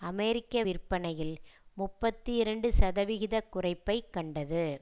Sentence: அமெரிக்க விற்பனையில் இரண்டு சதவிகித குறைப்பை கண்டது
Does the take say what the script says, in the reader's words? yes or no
no